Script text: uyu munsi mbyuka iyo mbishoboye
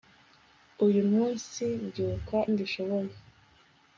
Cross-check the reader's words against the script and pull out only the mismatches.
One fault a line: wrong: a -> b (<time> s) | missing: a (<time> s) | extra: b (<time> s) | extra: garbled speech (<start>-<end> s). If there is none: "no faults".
missing: iyo (2.4 s)